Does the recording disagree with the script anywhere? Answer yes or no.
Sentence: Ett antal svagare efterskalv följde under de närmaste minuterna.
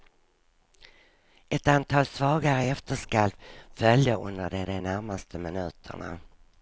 yes